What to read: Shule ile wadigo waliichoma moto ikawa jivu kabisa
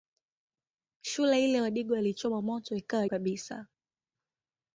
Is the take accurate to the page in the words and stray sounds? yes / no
no